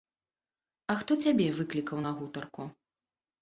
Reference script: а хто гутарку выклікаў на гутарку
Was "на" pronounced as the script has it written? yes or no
yes